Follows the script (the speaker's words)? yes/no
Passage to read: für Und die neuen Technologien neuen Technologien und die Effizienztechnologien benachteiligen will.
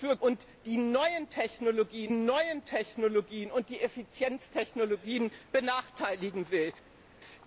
yes